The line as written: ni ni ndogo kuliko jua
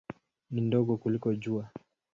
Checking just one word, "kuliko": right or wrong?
right